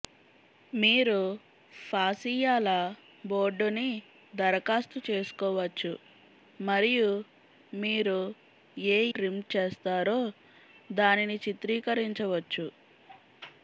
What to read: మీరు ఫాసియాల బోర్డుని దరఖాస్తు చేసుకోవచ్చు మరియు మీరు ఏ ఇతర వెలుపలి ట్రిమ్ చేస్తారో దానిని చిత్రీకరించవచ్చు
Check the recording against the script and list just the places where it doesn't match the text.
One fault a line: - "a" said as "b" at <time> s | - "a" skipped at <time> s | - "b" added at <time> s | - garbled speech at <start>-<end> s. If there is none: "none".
- "ఇతర వెలుపలి" skipped at 9.0 s